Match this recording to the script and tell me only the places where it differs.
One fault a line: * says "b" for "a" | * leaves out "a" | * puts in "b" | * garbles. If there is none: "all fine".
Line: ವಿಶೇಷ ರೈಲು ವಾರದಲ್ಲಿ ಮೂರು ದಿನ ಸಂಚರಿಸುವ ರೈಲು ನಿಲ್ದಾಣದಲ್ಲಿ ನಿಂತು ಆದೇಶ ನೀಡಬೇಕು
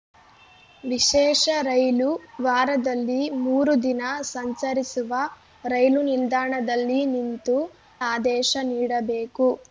all fine